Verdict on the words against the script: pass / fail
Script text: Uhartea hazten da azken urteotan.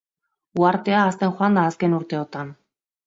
fail